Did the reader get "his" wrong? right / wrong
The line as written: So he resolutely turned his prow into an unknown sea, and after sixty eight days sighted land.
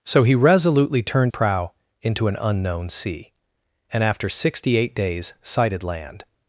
wrong